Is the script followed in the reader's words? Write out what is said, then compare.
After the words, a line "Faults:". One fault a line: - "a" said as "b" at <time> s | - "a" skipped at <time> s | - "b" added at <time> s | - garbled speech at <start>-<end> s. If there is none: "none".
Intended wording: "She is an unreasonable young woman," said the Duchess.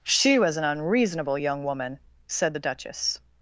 "She was an unreasonable young woman," said the Duchess.
Faults:
- "is" said as "was" at 0.4 s